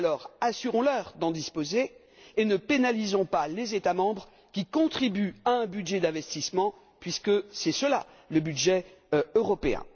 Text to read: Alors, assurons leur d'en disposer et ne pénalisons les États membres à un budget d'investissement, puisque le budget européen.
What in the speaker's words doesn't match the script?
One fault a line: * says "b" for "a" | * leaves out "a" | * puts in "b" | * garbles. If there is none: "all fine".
* puts in "pas"
* puts in "qui contribuent"
* puts in "c'est cela"